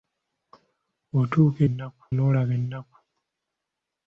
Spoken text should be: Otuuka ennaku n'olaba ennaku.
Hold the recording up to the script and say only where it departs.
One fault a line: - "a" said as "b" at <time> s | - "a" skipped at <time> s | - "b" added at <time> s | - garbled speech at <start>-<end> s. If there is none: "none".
none